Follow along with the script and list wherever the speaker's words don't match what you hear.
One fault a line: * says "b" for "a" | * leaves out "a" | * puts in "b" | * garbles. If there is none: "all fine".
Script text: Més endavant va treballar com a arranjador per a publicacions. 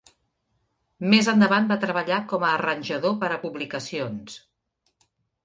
all fine